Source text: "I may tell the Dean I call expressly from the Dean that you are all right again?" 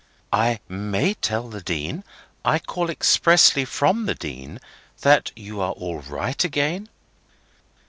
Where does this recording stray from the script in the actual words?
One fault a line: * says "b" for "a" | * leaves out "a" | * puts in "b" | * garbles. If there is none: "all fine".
all fine